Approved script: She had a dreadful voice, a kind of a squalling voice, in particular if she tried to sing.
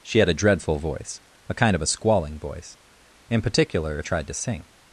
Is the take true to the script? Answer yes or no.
no